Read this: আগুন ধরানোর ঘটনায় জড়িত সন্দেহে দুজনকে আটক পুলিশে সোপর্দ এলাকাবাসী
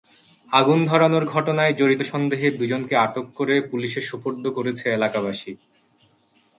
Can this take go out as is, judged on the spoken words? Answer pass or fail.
fail